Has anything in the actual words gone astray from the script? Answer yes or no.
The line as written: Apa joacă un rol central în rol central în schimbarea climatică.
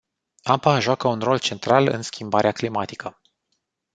yes